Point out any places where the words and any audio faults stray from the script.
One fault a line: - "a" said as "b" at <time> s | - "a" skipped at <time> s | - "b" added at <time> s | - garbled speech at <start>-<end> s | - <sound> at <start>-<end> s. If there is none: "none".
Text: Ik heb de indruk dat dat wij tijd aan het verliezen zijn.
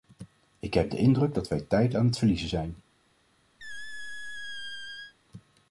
- "dat" skipped at 1.5 s
- squeak at 3.6-5.1 s